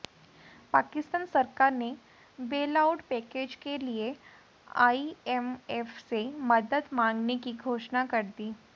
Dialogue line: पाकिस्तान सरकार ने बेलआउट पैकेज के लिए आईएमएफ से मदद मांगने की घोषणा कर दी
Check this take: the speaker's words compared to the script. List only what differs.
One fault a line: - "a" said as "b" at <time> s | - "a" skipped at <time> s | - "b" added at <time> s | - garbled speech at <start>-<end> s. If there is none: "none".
none